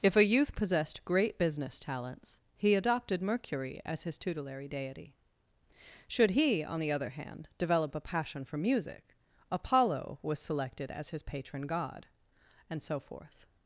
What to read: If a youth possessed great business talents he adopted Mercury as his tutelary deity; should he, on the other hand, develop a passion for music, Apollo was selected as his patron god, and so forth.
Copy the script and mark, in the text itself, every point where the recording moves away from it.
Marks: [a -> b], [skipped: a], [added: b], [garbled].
If a youth possessed great business talents he adopted Mercury as his tutelary deity; should he, on the other hand, develop a passion for music, Apollo was selected as his patron god, and so forth.